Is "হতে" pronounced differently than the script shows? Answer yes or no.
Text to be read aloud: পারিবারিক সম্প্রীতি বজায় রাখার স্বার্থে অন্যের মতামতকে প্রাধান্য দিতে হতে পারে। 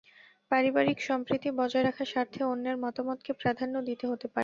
no